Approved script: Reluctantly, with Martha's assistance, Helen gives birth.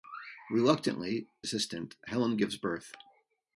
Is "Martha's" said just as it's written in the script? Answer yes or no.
no